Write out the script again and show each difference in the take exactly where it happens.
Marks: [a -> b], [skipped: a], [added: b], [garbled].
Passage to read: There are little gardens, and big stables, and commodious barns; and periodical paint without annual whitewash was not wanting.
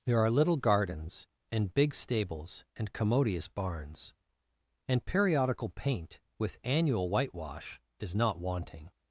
There are little gardens, and big stables, and commodious barns; and periodical paint [without -> with] annual whitewash [was -> is] not wanting.